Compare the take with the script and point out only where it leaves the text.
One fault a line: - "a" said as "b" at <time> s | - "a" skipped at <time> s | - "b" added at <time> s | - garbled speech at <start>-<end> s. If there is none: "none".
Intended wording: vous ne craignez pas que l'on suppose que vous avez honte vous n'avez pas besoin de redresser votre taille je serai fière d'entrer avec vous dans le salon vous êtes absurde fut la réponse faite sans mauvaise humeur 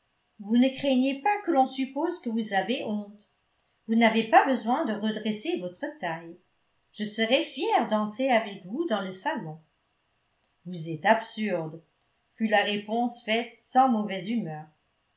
none